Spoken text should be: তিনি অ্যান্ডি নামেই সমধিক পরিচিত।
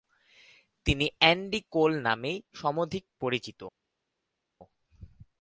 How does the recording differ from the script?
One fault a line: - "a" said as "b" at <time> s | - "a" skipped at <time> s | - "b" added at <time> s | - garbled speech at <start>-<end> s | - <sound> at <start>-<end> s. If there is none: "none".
- "কোল" added at 1.7 s